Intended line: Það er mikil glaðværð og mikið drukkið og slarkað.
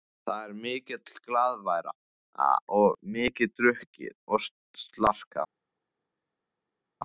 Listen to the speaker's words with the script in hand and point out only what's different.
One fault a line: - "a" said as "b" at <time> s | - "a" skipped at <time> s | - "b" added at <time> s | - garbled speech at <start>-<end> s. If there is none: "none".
none